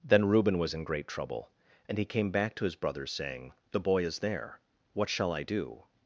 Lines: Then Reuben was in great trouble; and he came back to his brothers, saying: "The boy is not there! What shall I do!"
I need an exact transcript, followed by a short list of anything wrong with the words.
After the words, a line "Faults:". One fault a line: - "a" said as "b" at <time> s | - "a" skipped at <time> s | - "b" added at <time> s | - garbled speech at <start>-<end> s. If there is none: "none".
Then Reuben was in great trouble; and he came back to his brothers, saying: "The boy is there! What shall I do!"
Faults:
- "not" skipped at 4.2 s